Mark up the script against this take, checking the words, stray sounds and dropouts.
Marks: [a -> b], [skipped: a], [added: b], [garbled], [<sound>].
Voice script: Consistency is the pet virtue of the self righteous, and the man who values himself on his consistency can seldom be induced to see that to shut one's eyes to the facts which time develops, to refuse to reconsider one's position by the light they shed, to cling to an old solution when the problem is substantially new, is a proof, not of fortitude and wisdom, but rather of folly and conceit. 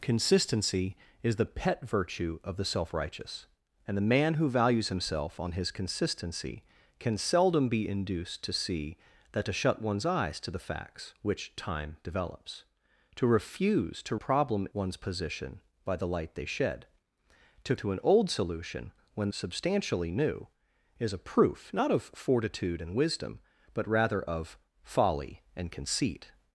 Consistency is the pet virtue of the self righteous, and the man who values himself on his consistency can seldom be induced to see that to shut one's eyes to the facts which time develops, to refuse to [reconsider -> problem] one's position by the light they shed, to [skipped: cling] to an old solution when [skipped: the problem is] substantially new, is a proof, not of fortitude and wisdom, but rather of folly and conceit.